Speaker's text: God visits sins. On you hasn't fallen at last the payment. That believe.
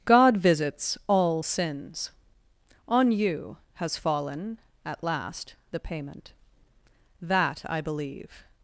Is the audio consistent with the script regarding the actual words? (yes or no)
no